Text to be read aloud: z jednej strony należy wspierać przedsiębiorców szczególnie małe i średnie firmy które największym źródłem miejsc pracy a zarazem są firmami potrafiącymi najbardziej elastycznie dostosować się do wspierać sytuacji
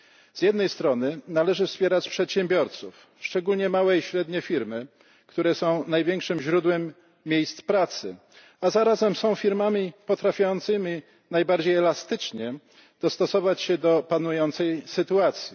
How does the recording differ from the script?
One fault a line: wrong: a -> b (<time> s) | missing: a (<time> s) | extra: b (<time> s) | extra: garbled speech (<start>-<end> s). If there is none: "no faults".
extra: są (5.5 s)
wrong: wspierać -> panującej (14.0 s)